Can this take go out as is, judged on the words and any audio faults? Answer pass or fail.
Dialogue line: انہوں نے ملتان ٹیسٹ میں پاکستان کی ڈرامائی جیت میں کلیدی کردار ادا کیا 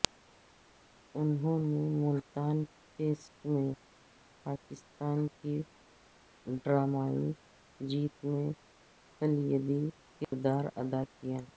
fail